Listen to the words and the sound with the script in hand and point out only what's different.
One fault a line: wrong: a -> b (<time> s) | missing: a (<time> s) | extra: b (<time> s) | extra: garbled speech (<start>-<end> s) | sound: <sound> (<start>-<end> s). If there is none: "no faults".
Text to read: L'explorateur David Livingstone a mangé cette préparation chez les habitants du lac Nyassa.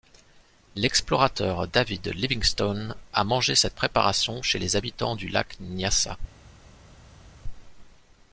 no faults